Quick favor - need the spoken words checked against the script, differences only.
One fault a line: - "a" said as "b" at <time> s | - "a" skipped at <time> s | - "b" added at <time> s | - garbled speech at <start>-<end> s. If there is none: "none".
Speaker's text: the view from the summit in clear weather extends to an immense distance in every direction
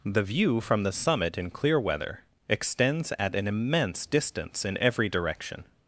- "to" said as "at" at 3.2 s